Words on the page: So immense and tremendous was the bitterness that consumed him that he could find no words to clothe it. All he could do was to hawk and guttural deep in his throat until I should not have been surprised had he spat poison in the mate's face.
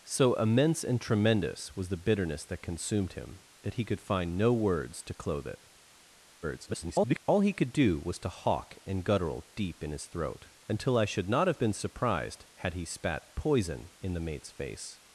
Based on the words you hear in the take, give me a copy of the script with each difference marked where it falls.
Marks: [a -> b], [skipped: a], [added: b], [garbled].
So immense and tremendous was the bitterness that consumed him that he could find no words to clothe it. [garbled] All he could do was to hawk and guttural deep in his throat until I should not have been surprised had he spat poison in the mate's face.